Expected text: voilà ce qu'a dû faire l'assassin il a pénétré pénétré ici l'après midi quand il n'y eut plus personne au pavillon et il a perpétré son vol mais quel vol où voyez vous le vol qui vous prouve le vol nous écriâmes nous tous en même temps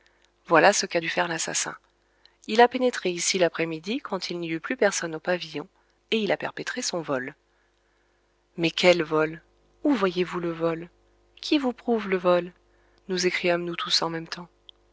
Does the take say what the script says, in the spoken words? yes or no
no